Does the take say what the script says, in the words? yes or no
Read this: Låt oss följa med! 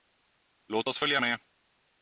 yes